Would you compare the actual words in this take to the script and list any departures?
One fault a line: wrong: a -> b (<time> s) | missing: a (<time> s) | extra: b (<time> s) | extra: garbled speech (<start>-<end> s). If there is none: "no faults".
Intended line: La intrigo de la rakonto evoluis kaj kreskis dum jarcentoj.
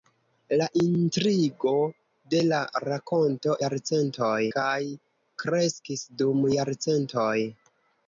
wrong: evoluis -> jarcentoj (3.6 s)